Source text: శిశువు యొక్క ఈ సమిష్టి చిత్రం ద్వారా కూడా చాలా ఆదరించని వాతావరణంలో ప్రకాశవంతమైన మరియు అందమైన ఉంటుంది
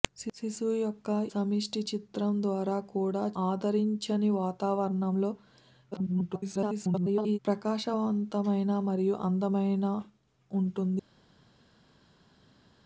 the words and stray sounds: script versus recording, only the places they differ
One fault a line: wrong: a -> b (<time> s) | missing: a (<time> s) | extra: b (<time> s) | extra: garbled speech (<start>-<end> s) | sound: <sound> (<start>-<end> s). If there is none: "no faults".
missing: ఈ (1.1 s)
missing: చాలా (3.2 s)
extra: garbled speech (5.9-7.4 s)